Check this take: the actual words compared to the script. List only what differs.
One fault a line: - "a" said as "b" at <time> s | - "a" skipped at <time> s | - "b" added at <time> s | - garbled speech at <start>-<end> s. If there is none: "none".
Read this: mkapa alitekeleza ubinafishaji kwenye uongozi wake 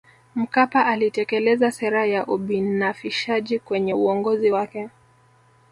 - "sera ya" added at 1.7 s